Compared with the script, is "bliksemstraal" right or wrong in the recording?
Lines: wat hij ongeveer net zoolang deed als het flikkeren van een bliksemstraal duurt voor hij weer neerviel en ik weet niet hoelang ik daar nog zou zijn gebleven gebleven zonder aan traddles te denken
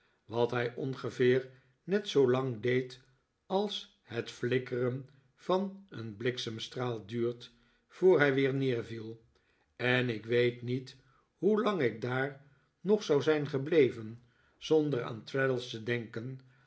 right